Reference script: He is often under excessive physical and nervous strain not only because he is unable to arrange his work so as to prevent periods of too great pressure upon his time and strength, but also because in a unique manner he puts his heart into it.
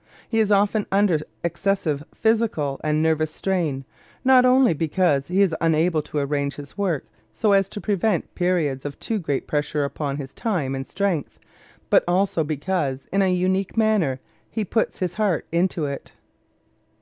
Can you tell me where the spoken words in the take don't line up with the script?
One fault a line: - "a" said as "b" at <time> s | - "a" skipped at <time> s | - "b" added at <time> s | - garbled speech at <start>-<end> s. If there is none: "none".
none